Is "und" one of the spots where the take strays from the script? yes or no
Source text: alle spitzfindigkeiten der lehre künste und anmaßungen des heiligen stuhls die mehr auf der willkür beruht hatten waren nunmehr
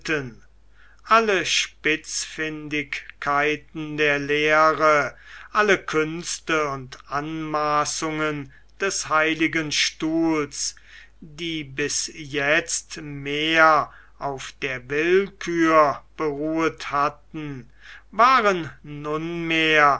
no